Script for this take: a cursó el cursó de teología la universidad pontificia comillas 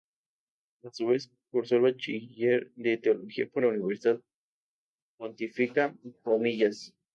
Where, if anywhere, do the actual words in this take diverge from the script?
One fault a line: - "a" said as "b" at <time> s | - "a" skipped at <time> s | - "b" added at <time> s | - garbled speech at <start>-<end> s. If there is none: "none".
- "su vez" added at 0.9 s
- "cursó" said as "bachiller" at 1.8 s
- "por" added at 3.5 s